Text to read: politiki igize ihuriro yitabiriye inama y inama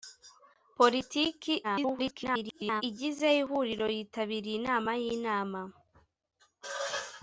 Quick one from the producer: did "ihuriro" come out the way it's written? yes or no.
yes